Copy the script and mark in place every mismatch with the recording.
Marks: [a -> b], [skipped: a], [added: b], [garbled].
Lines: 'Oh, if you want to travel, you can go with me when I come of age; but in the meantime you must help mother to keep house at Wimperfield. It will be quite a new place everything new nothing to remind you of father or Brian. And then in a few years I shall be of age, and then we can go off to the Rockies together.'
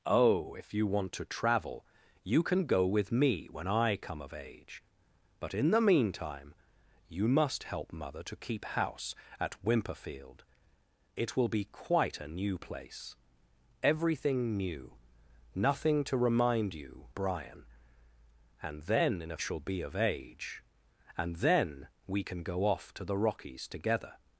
'Oh, if you want to travel, you can go with me when I come of age; but in the meantime you must help mother to keep house at Wimperfield. It will be quite a new place everything new nothing to remind you [skipped: of father or] Brian. And then in a [skipped: few years I] shall be of age, and then we can go off to the Rockies together.'